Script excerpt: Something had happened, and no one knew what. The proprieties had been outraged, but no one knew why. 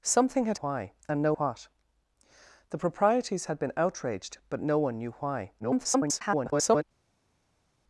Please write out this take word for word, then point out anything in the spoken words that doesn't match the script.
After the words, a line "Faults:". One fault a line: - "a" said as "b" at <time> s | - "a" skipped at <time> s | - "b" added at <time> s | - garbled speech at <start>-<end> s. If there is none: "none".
Something had why, and no what. The proprieties had been outraged, but no one knew why. [garbled]
Faults:
- "happened" said as "why" at 0.6 s
- "one knew" skipped at 1.3 s
- garbled speech at 5.6-6.8 s